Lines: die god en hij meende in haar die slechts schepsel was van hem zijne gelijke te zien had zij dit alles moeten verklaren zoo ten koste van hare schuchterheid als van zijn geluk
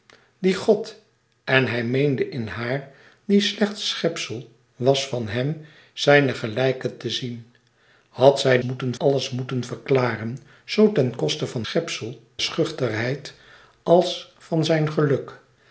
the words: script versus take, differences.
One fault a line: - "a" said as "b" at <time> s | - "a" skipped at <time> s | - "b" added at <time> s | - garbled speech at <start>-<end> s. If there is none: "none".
- "dit" said as "moeten" at 8.6 s
- "hare" said as "schepsel" at 11.6 s